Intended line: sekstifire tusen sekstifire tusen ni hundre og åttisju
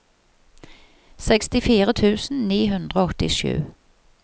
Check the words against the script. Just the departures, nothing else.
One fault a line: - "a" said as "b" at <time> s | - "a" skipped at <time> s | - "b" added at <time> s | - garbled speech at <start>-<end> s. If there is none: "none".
- "sekstifire tusen" skipped at 2.4 s